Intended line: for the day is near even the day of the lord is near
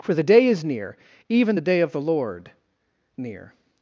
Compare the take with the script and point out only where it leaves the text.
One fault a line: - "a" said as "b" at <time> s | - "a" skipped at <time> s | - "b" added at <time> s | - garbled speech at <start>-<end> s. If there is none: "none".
- "is" skipped at 2.5 s